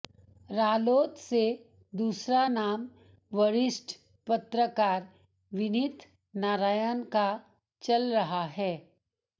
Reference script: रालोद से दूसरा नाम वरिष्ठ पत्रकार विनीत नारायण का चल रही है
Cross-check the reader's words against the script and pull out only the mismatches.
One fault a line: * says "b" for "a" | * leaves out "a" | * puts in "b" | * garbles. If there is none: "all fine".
* says "रहा" for "रही"